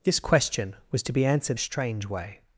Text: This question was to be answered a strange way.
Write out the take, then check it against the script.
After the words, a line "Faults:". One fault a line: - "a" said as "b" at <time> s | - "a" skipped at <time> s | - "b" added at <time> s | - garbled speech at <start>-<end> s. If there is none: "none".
This question was to be answered a strange way.
Faults:
none